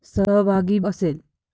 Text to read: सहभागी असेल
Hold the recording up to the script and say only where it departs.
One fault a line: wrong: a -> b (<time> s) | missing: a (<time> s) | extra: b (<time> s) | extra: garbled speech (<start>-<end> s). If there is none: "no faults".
no faults